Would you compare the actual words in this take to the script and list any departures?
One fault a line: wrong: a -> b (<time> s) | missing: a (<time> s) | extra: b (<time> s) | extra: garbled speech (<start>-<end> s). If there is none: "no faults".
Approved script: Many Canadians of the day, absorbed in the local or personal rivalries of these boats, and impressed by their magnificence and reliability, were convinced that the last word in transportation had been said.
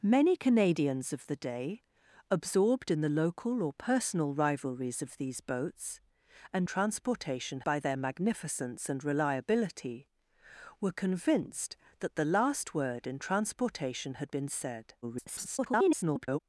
wrong: impressed -> transportation (6.6 s)
extra: garbled speech (15.0-16.4 s)